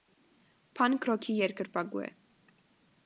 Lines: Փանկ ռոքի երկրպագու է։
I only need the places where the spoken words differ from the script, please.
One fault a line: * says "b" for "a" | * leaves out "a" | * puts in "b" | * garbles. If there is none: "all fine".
all fine